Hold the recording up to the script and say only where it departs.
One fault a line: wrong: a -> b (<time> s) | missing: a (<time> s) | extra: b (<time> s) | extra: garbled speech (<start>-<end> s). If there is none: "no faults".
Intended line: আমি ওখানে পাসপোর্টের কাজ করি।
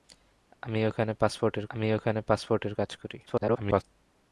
extra: আমি ওখানে পাসপোর্টের (1.7 s)
extra: garbled speech (3.3-3.8 s)